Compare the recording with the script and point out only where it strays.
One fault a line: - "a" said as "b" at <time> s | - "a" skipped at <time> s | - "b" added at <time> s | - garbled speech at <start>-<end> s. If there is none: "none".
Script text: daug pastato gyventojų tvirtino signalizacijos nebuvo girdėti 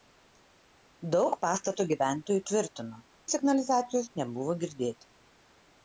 none